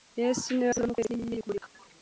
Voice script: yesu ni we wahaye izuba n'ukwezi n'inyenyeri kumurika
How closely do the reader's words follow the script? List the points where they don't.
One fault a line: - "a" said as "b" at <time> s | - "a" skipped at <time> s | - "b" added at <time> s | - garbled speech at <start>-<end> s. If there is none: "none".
- "wahaye" skipped at 0.7 s